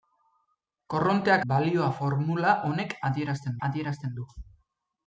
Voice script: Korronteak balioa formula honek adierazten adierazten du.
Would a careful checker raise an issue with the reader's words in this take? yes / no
no